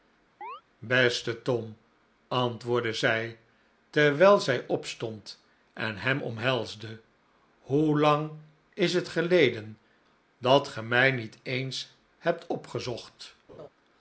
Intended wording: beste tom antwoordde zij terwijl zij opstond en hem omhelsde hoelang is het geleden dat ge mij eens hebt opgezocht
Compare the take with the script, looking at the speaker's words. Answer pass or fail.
fail